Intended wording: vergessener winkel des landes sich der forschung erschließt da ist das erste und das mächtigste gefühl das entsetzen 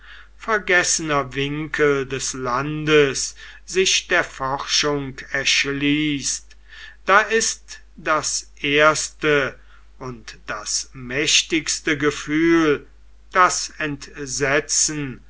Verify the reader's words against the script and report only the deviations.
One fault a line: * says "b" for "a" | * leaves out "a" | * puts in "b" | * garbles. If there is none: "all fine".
all fine